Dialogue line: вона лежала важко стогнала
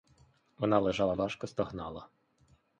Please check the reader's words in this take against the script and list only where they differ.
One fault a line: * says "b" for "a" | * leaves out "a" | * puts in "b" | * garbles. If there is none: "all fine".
all fine